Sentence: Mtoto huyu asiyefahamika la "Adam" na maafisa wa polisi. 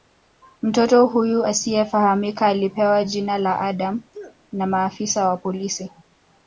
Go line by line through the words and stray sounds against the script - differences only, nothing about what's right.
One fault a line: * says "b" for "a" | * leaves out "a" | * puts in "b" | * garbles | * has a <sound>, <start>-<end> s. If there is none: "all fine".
* puts in "alipewa jina"
* has a sneeze, 4.1-4.4 s